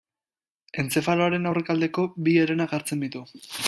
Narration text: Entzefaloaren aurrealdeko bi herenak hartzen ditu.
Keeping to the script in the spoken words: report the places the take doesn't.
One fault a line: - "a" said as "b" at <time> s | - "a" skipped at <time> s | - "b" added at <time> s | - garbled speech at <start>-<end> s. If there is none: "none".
none